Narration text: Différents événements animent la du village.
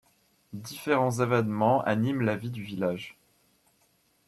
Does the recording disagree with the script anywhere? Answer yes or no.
yes